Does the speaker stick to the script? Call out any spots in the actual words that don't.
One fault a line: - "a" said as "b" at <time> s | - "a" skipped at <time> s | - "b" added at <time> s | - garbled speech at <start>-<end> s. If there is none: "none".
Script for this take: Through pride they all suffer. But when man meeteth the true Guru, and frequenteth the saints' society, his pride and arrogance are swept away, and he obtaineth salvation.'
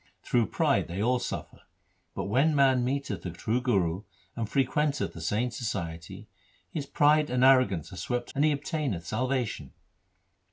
- "away" skipped at 8.3 s